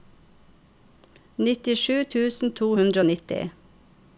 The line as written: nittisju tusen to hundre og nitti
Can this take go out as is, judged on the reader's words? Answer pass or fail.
pass